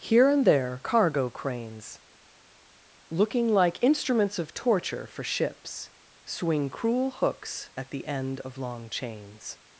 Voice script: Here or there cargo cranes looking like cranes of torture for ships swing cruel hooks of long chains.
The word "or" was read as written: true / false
false